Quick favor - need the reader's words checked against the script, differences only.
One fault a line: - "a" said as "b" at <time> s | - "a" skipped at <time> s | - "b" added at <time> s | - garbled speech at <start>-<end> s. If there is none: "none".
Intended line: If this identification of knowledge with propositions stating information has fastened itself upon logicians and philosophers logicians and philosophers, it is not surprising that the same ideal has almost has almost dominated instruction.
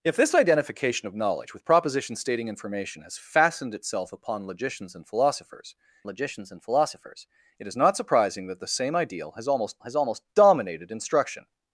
none